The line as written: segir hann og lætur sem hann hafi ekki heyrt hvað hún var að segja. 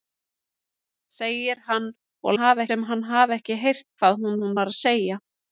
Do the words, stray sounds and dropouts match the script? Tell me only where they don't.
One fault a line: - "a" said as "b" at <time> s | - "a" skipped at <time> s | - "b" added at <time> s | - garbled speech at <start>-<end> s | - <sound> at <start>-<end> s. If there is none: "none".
- "lætur" said as "hafi" at 2.4 s
- "hún" added at 4.4 s